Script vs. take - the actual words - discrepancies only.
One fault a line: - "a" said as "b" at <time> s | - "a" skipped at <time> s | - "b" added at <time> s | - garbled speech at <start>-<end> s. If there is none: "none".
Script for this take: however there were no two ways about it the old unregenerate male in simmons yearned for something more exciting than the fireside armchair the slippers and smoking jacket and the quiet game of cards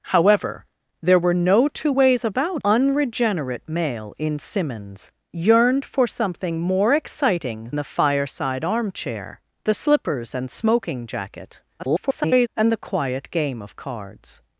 - "it the old" skipped at 2.6 s
- "than" skipped at 7.7 s
- garbled speech at 11.8-12.5 s